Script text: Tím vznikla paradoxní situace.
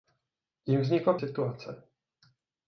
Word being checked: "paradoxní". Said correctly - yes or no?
no